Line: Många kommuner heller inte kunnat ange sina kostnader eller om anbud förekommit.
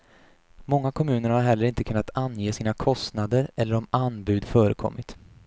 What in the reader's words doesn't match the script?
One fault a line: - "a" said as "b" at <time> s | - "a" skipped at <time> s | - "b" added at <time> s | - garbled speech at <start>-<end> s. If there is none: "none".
- "har" added at 1.3 s